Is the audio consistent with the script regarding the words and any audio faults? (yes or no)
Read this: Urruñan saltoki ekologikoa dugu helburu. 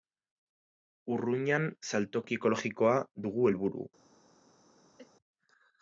no